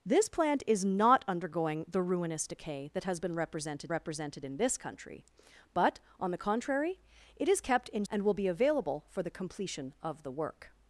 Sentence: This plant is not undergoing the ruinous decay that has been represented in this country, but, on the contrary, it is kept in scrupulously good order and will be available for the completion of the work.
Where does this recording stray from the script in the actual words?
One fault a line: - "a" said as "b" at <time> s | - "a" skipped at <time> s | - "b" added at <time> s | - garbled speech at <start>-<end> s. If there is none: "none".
- "represented" added at 3.9 s
- "scrupulously good order" skipped at 8.0 s